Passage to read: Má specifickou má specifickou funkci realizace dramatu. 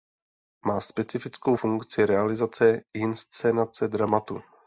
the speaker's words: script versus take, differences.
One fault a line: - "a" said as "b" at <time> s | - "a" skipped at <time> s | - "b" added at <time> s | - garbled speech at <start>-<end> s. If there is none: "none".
- "má specifickou" skipped at 1.6 s
- "inscenace" added at 2.9 s